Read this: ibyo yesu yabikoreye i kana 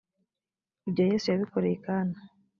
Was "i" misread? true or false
false